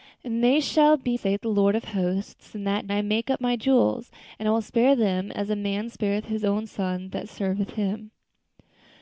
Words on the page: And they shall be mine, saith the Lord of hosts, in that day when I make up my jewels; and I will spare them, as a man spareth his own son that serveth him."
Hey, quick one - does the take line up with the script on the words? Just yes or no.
no